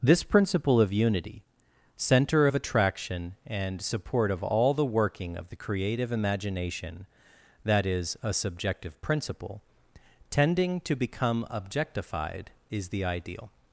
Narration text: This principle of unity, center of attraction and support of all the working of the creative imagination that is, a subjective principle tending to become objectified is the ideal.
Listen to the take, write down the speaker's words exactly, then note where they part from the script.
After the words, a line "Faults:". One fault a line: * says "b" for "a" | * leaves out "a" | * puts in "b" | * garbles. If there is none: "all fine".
This principle of unity, center of attraction and support of all the working of the creative imagination that is, a subjective principle tending to become objectified is the ideal.
Faults:
all fine